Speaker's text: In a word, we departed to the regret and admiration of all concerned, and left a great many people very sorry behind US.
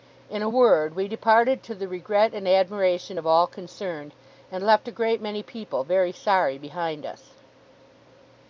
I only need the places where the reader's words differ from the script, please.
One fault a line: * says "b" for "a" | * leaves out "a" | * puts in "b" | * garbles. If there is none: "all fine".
all fine